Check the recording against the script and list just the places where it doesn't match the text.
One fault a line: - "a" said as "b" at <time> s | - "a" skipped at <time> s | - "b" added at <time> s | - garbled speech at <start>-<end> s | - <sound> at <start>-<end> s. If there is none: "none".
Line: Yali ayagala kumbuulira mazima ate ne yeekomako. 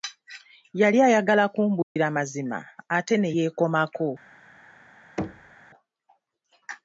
- dropout at 1.8-2.0 s
- thud at 5.2-5.6 s